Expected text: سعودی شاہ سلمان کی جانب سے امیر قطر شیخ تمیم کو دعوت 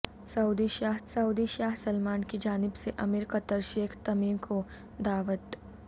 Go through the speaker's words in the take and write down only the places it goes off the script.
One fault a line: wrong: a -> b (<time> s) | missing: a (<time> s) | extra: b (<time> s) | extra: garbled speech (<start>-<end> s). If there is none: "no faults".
extra: سعودی شاہ (1.1 s)